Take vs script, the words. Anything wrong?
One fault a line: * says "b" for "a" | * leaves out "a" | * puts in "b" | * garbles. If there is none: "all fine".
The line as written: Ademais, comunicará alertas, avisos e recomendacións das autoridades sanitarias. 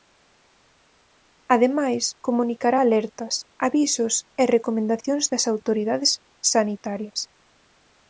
all fine